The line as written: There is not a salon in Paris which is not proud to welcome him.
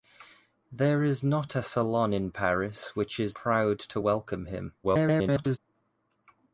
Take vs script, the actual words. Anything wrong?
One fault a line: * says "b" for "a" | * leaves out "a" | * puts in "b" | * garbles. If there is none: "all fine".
* leaves out "not"
* garbles